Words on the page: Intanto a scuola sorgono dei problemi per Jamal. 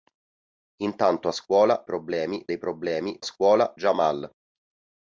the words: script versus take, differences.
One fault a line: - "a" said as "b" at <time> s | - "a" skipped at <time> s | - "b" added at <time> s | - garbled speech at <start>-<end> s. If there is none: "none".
- "sorgono" said as "problemi" at 1.8 s
- "per" said as "scuola" at 3.2 s